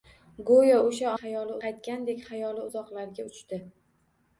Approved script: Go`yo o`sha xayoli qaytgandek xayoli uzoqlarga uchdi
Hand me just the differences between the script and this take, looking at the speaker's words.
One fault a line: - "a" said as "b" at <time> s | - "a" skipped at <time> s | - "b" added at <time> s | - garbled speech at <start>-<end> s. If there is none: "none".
none